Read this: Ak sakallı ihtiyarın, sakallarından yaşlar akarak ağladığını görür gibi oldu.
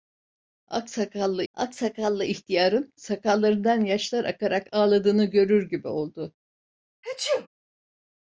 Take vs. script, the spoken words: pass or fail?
fail